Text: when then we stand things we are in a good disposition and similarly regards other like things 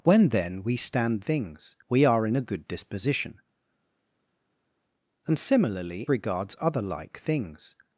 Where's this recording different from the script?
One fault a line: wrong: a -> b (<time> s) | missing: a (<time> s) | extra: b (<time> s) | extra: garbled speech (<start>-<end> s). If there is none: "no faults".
no faults